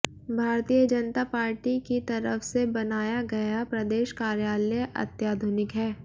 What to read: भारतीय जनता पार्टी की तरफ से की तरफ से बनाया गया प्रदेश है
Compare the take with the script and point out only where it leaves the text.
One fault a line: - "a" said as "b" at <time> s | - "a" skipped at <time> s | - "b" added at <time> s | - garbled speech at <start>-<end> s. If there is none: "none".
- "की तरफ से" skipped at 2.6 s
- "कार्यालय अत्याधुनिक" added at 4.2 s